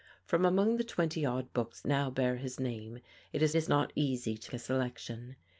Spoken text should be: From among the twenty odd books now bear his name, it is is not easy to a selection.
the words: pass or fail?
pass